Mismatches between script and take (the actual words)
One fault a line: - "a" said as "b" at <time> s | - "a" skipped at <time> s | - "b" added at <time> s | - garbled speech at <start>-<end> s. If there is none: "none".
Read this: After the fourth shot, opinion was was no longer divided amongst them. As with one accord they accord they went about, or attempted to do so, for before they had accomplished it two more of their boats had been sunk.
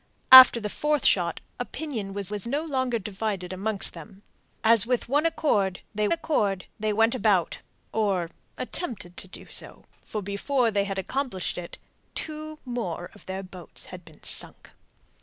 none